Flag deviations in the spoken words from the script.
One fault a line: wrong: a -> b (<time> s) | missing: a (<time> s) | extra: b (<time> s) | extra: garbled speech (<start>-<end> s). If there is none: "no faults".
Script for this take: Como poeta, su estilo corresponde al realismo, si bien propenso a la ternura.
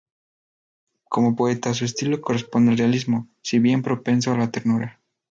no faults